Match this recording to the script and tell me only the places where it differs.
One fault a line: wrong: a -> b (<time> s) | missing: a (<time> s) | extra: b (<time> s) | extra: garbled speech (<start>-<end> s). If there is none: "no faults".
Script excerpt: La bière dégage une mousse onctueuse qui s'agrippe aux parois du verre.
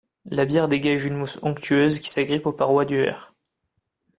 no faults